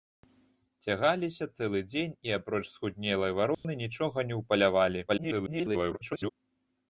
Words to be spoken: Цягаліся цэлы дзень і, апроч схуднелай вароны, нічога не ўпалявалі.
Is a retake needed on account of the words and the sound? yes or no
yes